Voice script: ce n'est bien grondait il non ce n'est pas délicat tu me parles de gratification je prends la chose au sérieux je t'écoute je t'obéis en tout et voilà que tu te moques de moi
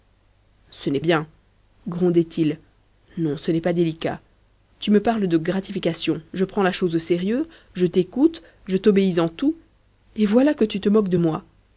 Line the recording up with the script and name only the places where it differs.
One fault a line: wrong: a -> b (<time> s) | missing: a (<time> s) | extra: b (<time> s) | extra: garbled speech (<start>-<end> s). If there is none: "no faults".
no faults